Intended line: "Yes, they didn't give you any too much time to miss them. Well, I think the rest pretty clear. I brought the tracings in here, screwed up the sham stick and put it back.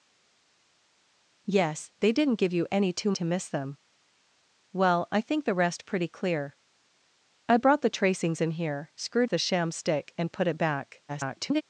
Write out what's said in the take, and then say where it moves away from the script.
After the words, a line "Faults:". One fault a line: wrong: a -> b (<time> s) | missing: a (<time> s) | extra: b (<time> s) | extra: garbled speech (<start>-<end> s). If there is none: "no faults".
"Yes, they didn't give you any too to miss them. Well, I think the rest pretty clear. I brought the tracings in here, screwed the sham stick and put it back. [garbled]
Faults:
missing: much time (3.1 s)
missing: up (9.3 s)
extra: garbled speech (11.1-11.6 s)